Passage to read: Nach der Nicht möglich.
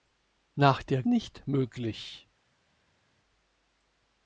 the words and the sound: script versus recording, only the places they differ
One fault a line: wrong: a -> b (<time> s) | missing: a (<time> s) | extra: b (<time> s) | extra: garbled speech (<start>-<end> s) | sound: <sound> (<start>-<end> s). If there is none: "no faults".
no faults